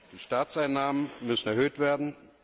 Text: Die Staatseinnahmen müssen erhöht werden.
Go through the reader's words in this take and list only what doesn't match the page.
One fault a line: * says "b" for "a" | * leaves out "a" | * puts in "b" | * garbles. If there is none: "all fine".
all fine